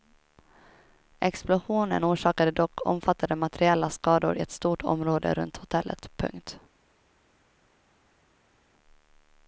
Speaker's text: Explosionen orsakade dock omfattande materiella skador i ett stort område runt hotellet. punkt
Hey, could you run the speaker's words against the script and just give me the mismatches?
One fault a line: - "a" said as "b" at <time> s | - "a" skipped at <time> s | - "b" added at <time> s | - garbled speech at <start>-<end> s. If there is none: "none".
- "i" skipped at 4.4 s